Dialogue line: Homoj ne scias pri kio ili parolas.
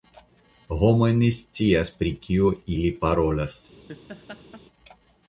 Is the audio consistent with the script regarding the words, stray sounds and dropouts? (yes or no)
no